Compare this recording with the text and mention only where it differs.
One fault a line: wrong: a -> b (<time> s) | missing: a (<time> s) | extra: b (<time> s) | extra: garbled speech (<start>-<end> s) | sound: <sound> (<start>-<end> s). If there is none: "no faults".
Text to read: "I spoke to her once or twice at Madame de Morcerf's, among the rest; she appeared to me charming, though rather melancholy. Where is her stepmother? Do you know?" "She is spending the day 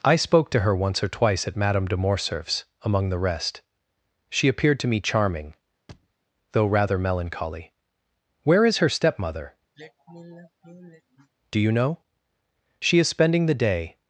sound: thud (5.9-6.1 s)
sound: sigh (9.7-11.3 s)